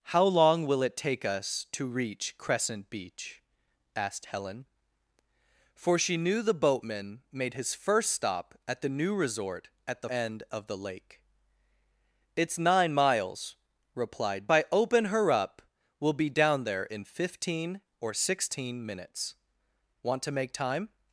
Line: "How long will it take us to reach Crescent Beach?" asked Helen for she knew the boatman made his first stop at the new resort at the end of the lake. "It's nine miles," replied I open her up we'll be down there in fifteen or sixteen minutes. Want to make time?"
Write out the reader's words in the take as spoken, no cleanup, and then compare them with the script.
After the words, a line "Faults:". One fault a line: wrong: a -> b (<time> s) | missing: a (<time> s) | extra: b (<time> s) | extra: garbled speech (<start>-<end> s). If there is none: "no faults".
"How long will it take us to reach Crescent Beach?" asked Helen for she knew the boatman made his first stop at the new resort at the end of the lake. "It's nine miles," replied I open her up we'll be down there in fifteen or sixteen minutes. Want to make time?"
Faults:
no faults